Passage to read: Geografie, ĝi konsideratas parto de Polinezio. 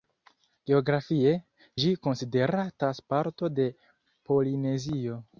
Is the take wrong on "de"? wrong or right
right